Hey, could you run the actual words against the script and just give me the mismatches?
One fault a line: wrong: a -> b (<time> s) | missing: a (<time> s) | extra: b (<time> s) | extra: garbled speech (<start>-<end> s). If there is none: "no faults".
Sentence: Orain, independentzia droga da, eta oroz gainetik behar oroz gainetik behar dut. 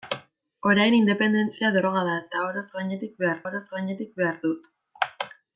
no faults